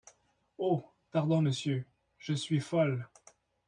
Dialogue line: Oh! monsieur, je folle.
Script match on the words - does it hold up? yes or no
no